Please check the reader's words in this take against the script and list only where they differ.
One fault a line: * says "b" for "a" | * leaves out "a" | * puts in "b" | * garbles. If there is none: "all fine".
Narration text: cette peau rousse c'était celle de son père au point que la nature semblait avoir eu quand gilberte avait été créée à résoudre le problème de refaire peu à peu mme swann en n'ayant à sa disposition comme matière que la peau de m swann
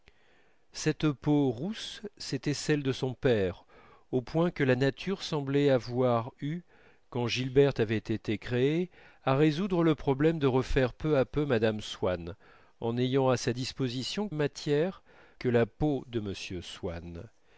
* leaves out "comme"